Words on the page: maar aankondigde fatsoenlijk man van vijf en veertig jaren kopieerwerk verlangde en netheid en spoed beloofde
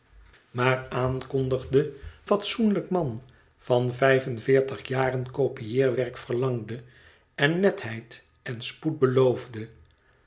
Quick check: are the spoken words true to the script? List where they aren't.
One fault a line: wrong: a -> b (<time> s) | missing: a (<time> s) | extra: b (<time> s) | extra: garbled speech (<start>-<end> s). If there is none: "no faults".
no faults